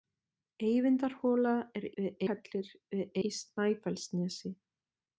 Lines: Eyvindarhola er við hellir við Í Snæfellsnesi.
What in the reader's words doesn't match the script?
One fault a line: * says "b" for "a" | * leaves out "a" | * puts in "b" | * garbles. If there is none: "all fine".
all fine